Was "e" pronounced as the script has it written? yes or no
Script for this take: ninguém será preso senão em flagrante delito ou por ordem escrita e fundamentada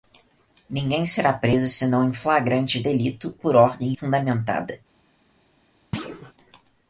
no